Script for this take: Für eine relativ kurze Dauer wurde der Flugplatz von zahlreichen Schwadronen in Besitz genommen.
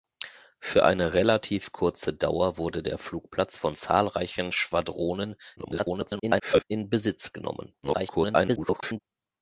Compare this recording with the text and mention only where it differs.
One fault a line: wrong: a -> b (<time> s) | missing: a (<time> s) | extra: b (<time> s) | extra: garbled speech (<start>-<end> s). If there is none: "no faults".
extra: garbled speech (5.6-6.6 s)
extra: garbled speech (7.8-9.0 s)